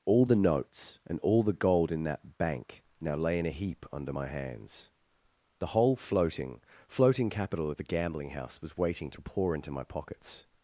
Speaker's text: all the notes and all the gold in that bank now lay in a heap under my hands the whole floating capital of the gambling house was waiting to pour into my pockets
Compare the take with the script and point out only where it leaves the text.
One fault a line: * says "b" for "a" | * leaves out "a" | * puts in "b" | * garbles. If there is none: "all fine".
* puts in "floating"